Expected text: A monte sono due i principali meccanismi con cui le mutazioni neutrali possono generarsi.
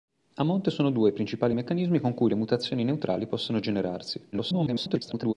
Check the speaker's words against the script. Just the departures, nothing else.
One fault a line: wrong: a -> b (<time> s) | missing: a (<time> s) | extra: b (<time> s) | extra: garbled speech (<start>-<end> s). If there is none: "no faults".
extra: garbled speech (4.3-5.3 s)